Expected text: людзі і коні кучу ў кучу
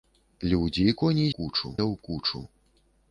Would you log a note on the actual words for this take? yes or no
no